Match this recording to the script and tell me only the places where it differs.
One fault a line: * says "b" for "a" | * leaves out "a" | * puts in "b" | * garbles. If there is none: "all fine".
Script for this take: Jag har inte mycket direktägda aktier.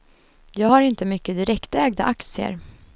all fine